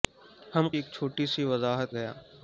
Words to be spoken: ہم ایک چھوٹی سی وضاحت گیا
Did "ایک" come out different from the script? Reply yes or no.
no